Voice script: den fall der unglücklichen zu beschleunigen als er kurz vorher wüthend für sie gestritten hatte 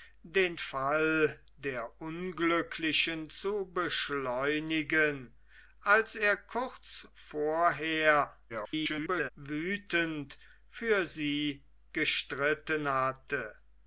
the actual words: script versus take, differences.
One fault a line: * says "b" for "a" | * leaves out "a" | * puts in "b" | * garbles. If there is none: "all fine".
* garbles